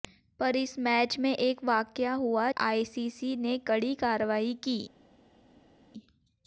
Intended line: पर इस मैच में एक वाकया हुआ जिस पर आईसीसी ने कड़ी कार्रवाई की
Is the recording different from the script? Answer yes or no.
yes